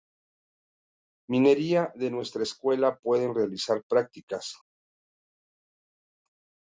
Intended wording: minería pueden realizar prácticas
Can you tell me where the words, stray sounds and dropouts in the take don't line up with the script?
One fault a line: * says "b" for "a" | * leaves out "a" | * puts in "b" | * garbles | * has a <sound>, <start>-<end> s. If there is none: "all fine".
* puts in "de nuestra escuela"